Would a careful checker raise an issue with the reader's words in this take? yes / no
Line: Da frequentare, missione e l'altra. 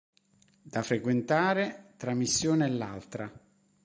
yes